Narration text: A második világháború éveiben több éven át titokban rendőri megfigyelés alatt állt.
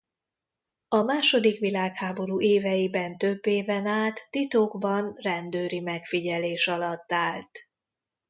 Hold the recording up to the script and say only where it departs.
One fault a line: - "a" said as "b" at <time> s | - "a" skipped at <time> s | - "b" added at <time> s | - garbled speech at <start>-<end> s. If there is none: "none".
none